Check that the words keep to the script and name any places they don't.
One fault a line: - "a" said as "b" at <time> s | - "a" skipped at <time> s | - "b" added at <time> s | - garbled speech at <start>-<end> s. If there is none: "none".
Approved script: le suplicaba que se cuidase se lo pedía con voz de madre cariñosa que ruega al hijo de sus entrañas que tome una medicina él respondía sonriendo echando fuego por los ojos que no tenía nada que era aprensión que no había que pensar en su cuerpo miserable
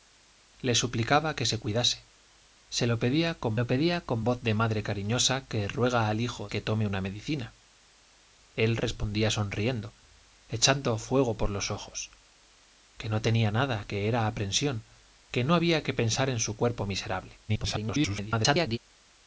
- "lo pedía con" added at 3.6 s
- "de sus entrañas" skipped at 6.5 s
- garbled speech at 17.5-18.8 s